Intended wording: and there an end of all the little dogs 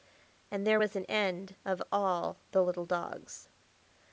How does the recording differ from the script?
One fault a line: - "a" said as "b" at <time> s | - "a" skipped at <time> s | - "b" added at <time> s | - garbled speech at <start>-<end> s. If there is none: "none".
- "was" added at 0.8 s